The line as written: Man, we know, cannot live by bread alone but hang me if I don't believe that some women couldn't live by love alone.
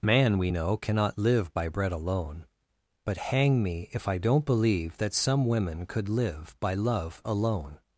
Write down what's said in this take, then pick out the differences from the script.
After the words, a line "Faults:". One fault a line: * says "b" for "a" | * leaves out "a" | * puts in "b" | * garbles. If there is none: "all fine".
Man, we know, cannot live by bread alone but hang me if I don't believe that some women could live by love alone.
Faults:
* says "could" for "couldn't"